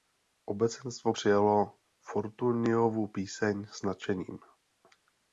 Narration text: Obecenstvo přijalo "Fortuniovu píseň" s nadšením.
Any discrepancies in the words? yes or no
no